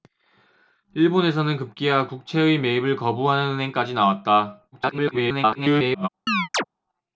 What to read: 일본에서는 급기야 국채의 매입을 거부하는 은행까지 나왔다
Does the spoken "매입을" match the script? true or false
true